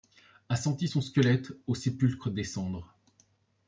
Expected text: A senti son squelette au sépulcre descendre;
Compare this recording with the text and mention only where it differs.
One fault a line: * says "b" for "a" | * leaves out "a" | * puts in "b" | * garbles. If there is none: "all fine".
all fine